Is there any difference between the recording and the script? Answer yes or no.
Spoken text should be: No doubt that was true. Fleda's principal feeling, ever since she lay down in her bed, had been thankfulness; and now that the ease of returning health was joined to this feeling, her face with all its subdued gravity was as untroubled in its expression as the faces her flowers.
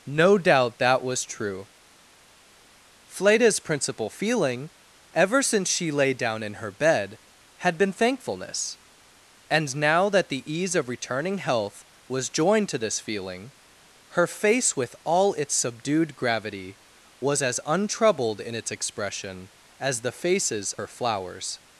no